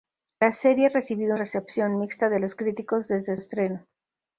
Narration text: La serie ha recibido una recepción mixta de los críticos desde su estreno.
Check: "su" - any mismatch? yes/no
yes